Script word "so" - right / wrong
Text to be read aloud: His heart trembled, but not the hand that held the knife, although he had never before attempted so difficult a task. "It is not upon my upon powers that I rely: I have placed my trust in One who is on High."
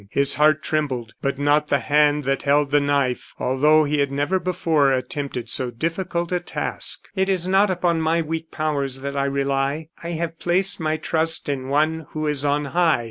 right